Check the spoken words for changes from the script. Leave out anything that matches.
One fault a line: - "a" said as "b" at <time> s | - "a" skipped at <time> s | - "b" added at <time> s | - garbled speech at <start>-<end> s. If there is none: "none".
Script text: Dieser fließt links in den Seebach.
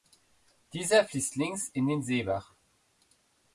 none